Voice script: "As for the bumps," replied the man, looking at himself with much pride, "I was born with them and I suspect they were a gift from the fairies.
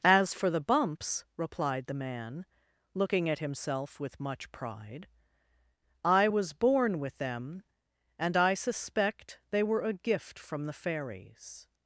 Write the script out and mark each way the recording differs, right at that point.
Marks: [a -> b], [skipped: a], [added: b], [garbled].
"As for the bumps," replied the man, looking at himself with much pride, "I was born with them and I suspect they were a gift from the fairies.